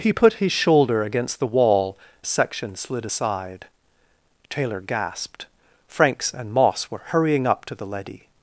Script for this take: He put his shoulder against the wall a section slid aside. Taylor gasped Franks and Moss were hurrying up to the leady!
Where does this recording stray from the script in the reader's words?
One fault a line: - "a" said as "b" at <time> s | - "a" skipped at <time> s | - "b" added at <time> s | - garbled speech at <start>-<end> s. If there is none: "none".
none